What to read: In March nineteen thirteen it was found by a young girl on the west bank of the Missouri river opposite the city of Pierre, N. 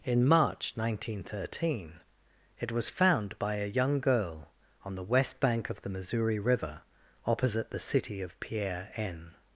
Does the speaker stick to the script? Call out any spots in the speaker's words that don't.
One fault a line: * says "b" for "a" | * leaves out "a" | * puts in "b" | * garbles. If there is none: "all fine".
all fine